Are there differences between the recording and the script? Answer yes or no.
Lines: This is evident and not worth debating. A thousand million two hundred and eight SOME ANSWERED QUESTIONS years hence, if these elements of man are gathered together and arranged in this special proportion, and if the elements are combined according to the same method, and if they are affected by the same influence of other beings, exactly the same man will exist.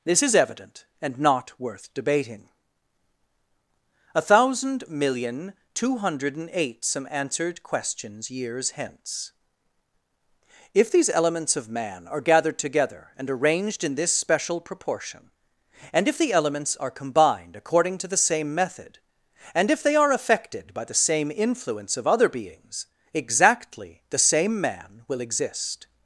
no